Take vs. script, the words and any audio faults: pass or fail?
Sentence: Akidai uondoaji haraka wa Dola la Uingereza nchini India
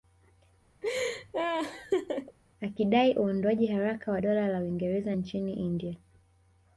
fail